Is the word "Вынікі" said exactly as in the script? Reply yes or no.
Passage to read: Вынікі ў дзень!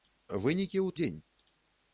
yes